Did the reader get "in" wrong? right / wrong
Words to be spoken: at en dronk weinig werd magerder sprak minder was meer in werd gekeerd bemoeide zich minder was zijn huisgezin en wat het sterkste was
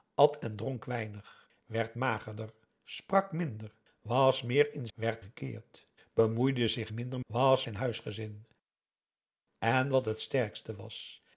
right